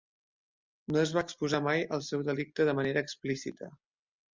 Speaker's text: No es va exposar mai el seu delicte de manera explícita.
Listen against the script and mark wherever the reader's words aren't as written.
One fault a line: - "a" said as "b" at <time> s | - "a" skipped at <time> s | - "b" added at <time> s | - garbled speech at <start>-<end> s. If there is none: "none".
none